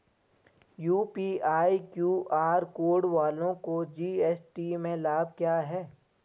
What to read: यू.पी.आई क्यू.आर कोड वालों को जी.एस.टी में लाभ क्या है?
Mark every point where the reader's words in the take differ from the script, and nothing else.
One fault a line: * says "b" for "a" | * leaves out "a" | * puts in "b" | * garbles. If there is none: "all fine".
all fine